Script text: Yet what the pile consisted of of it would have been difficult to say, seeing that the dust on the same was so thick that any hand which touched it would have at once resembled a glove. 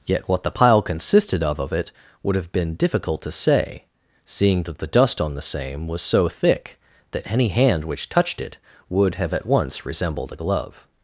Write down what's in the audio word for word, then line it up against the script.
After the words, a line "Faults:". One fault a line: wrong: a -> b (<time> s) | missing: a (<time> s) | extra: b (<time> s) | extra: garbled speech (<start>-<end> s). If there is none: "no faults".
Yet what the pile consisted of of it would have been difficult to say, seeing that the dust on the same was so thick that any hand which touched it would have at once resembled a glove.
Faults:
no faults